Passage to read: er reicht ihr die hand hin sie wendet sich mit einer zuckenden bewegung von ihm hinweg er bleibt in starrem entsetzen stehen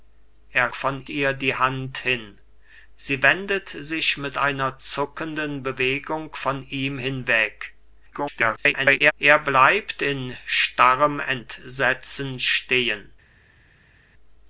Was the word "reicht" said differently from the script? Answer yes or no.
yes